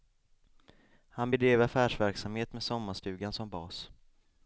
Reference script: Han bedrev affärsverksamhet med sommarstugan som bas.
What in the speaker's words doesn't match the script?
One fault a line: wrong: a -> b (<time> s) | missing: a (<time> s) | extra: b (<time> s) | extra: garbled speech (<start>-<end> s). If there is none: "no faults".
no faults